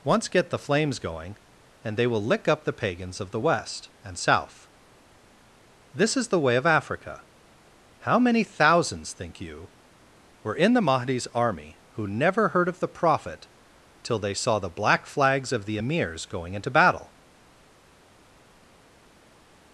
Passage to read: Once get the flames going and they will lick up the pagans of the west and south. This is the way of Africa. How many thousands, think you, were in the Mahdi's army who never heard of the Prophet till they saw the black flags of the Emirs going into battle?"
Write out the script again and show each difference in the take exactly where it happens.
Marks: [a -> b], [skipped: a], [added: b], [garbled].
Once get the flames going and they will lick up the pagans of the west and south. This is the way of Africa. How many thousands, think you, were in the Mahdi's army who never heard of the Prophet till they saw the black flags of the Emirs going into battle?"